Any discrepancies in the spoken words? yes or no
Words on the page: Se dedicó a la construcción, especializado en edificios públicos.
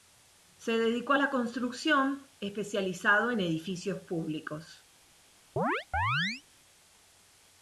no